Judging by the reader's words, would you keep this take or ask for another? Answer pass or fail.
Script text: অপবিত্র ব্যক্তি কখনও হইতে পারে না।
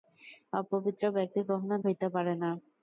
pass